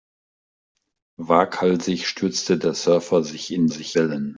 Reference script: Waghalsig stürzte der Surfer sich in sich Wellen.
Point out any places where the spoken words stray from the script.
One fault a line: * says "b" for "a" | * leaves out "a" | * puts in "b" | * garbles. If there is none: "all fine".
all fine